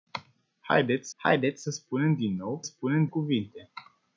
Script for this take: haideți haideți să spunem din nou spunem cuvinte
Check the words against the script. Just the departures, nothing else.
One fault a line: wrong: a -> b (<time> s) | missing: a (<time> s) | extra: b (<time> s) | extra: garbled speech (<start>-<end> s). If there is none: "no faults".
no faults